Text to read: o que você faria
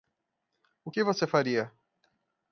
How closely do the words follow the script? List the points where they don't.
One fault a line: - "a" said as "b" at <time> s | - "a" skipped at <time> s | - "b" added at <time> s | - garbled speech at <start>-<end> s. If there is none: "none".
none